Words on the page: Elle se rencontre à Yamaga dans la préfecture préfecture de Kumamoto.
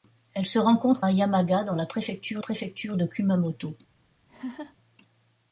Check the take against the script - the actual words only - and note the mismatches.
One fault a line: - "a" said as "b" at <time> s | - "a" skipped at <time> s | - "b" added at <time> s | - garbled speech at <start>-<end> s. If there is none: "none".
none